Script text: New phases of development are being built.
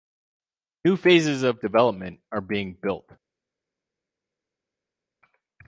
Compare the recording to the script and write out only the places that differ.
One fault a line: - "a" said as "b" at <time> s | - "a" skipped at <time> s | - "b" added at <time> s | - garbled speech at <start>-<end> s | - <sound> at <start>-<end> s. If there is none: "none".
none